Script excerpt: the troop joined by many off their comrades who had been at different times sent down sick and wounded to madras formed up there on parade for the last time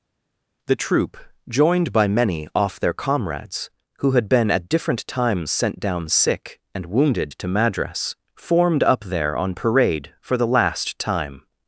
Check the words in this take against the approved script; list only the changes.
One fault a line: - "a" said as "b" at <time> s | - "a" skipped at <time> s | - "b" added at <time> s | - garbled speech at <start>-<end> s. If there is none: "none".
none